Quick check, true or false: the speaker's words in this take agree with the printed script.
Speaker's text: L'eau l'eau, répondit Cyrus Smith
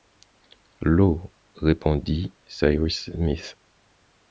false